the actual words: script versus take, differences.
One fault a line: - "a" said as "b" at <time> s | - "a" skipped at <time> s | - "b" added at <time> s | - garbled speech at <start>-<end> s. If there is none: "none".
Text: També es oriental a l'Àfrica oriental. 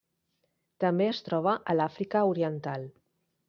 - "oriental" said as "troba" at 1.3 s